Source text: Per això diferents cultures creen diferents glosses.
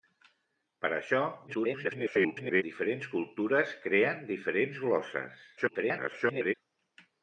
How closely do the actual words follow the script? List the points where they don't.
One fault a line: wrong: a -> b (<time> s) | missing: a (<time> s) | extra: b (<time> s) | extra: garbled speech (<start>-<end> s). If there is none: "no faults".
extra: garbled speech (1.5-2.6 s)
extra: garbled speech (5.6-6.5 s)